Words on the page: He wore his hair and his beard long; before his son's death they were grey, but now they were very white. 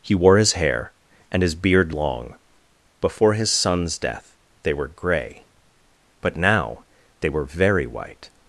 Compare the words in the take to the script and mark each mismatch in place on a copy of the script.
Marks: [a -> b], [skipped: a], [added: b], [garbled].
He wore his hair and his beard long; before his son's death they were grey, but now they were very white.